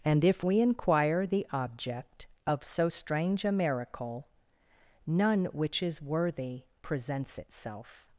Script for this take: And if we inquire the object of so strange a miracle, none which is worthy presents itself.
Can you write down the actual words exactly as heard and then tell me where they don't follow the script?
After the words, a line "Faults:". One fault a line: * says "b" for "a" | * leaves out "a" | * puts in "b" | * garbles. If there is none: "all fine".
And if we inquire the object of so strange a miracle, none which is worthy presents itself.
Faults:
all fine